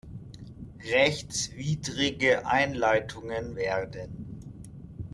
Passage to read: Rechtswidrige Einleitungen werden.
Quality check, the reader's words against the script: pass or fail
pass